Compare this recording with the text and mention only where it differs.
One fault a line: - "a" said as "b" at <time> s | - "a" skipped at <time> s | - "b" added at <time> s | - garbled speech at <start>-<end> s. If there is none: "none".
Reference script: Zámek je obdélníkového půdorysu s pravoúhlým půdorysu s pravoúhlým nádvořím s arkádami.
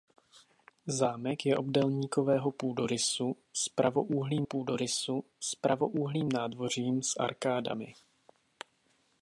none